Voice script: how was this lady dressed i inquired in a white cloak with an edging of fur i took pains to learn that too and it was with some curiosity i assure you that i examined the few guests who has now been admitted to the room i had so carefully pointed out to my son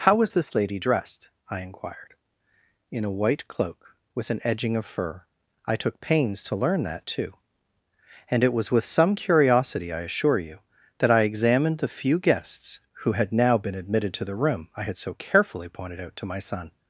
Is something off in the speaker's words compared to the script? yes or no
yes